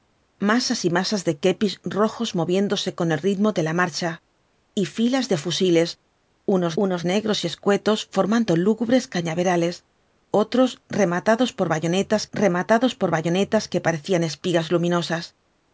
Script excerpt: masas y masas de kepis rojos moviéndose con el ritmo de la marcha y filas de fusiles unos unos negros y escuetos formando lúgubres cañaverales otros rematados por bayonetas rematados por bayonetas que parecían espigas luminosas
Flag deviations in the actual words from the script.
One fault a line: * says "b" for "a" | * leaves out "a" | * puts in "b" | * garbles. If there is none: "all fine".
all fine